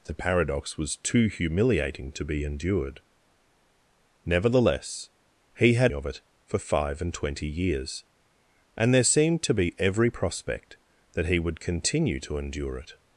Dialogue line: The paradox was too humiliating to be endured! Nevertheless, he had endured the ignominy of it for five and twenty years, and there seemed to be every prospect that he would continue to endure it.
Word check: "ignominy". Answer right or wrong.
wrong